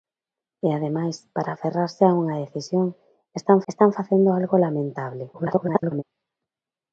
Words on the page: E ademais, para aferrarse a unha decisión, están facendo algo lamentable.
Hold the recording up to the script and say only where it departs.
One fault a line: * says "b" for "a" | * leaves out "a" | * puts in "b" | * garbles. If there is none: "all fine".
* puts in "están"
* garbles